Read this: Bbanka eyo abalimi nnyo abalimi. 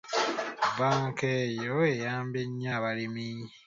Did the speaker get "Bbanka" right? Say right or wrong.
right